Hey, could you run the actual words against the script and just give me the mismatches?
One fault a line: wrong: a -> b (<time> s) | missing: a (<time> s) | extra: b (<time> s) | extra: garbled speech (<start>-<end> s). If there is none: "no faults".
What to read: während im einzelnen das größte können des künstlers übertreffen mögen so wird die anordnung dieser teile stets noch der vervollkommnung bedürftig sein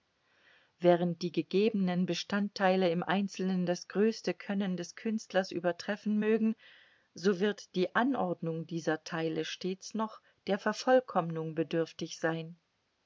extra: die gegebenen bestandteile (1.2 s)